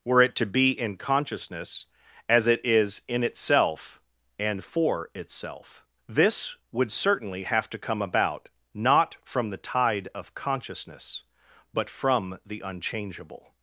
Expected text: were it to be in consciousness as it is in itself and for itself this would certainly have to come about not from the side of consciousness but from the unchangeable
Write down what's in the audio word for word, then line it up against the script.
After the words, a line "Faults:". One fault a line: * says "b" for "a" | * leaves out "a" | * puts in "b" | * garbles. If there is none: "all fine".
were it to be in consciousness as it is in itself and for itself this would certainly have to come about not from the tide of consciousness but from the unchangeable
Faults:
* says "tide" for "side"